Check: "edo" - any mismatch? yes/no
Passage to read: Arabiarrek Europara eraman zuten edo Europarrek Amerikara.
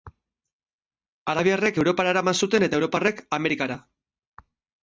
yes